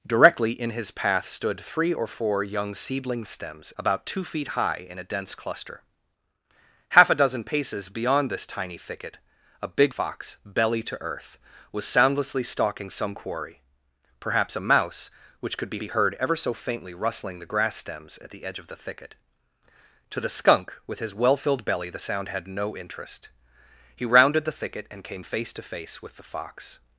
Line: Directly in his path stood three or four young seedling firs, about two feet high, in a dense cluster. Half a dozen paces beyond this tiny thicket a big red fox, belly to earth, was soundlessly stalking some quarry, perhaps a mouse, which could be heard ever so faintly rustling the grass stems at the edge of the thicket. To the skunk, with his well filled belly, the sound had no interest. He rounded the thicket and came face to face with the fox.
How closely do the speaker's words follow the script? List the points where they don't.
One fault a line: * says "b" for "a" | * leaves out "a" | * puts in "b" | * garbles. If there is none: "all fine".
* says "stems" for "firs"
* leaves out "red"
* puts in "be"